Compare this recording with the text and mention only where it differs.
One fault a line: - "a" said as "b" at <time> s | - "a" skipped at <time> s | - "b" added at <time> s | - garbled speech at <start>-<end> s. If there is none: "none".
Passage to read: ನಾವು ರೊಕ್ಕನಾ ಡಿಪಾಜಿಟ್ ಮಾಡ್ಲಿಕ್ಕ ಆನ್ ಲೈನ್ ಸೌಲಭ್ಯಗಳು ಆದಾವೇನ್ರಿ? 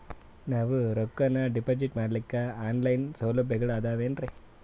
none